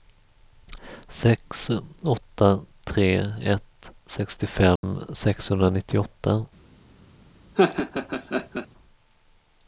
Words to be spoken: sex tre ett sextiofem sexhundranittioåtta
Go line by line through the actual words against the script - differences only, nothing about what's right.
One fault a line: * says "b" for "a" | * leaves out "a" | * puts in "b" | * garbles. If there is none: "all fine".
* puts in "åtta"